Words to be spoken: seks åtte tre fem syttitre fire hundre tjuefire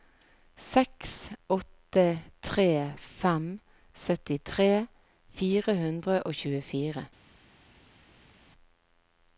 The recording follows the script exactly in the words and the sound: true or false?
false